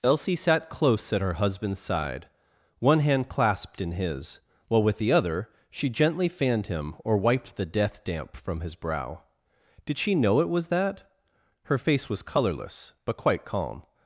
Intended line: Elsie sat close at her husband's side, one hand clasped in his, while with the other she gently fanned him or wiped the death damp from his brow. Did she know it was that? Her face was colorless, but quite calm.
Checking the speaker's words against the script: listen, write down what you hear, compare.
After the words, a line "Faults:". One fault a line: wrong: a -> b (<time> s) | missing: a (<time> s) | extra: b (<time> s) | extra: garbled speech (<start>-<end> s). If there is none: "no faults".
Elsie sat close at her husband's side, one hand clasped in his, while with the other she gently fanned him or wiped the death damp from his brow. Did she know it was that? Her face was colorless, but quite calm.
Faults:
no faults